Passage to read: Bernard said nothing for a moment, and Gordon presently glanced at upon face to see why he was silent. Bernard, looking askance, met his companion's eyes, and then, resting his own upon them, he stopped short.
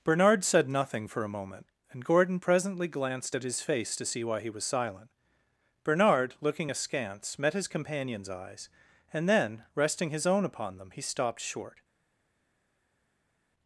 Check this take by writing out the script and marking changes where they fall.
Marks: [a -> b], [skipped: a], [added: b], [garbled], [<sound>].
Bernard said nothing for a moment, and Gordon presently glanced at [upon -> his] face to see why he was silent. Bernard, looking askance, met his companion's eyes, and then, resting his own upon them, he stopped short.